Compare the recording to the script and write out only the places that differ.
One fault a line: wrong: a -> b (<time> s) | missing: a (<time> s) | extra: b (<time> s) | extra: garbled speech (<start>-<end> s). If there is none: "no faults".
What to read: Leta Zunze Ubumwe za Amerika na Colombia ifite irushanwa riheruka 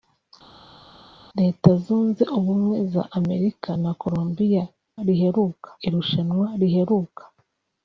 wrong: ifite -> riheruka (5.1 s)